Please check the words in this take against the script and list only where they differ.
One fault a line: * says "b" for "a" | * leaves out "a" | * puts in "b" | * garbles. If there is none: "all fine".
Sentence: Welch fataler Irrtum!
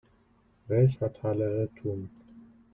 all fine